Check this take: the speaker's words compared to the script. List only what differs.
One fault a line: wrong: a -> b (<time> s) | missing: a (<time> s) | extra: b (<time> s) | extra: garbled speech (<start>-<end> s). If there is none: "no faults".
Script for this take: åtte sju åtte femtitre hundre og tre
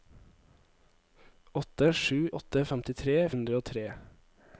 no faults